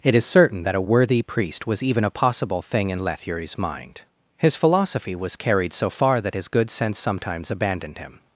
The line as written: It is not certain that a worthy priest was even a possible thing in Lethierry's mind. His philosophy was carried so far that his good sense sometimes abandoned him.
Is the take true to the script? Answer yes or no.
no